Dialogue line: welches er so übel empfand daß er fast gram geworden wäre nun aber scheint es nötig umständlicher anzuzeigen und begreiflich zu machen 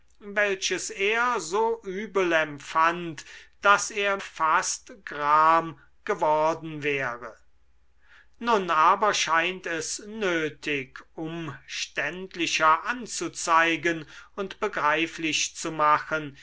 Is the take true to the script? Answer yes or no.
yes